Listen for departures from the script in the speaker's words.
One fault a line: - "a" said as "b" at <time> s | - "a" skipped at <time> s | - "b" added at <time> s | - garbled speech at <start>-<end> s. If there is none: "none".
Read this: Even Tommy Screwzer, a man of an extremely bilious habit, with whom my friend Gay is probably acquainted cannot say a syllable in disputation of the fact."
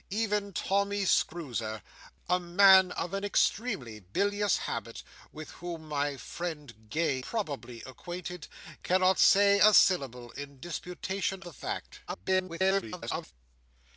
- "is" skipped at 7.2 s
- "of" skipped at 11.4 s
- garbled speech at 12.1-13.3 s